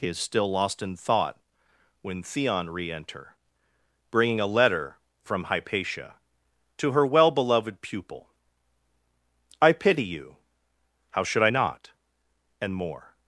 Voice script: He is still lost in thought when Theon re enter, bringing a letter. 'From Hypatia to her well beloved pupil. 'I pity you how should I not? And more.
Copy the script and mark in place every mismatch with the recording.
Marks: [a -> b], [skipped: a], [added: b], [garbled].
He is still lost in thought when Theon re enter, bringing a letter. 'From Hypatia to her well beloved pupil. 'I pity you how should I not? And more.